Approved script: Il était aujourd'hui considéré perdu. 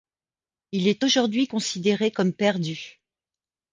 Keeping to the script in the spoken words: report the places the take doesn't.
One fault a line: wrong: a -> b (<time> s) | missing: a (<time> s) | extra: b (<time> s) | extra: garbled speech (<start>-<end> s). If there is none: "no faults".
wrong: était -> est (0.9 s)
extra: comme (2.1 s)